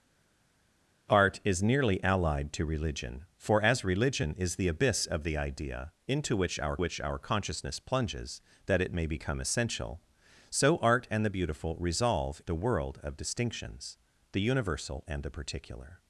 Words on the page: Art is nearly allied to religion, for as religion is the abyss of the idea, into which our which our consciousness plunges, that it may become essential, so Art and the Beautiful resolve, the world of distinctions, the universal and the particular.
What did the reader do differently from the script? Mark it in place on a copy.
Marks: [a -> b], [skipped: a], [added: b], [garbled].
Art is nearly allied to religion, for as religion is the abyss of the idea, into which our which our consciousness plunges, that it may become essential, so Art and the Beautiful resolve, the world of distinctions, the universal and the particular.